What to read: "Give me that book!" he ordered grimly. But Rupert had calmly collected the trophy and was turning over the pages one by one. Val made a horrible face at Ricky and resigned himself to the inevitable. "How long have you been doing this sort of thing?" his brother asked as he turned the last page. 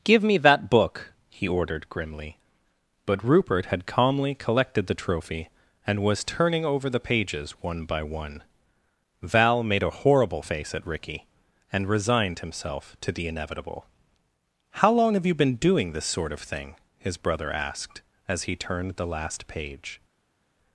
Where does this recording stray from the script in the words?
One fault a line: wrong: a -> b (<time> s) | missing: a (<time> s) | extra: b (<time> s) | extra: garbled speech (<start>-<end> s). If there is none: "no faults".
no faults